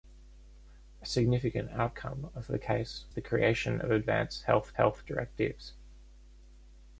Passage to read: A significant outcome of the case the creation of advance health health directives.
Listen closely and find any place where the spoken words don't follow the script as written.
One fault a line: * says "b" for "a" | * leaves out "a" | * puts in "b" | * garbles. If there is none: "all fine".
all fine